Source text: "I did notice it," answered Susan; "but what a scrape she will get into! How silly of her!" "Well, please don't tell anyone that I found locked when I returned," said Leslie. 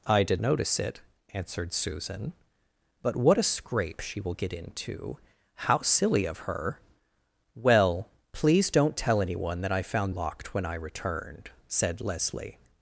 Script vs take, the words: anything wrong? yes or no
no